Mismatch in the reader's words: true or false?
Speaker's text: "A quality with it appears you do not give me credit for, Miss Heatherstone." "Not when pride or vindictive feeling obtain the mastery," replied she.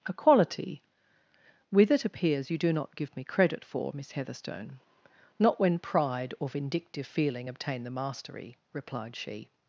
false